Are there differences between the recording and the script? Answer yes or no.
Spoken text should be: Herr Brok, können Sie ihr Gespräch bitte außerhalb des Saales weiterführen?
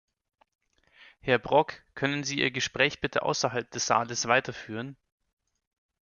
no